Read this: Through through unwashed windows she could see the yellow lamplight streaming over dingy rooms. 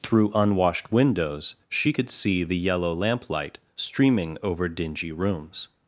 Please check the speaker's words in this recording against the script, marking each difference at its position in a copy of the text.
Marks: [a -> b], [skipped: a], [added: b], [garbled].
Through [skipped: through] unwashed windows she could see the yellow lamplight streaming over dingy rooms.